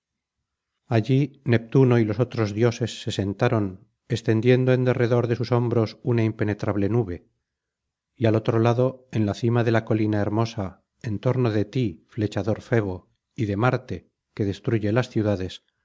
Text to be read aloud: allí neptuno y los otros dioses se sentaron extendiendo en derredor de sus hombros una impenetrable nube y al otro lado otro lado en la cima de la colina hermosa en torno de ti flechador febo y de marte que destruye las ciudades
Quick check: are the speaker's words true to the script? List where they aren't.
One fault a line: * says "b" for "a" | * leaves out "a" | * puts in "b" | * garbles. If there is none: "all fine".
* leaves out "otro lado"